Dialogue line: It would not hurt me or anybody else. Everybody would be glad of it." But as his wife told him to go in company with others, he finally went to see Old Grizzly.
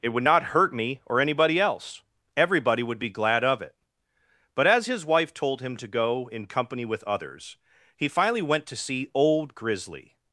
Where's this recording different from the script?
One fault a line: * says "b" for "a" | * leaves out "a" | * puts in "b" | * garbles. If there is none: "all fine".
all fine